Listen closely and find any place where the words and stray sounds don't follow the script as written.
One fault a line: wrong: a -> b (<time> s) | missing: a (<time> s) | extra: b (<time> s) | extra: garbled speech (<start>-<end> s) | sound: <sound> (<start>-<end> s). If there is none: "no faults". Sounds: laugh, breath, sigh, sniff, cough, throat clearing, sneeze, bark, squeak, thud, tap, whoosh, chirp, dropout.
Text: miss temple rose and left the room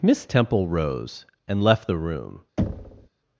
sound: thud (2.6-3.1 s)